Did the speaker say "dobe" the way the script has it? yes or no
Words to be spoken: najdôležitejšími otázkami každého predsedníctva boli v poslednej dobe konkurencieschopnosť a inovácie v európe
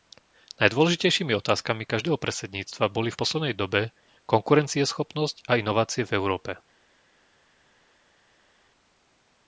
yes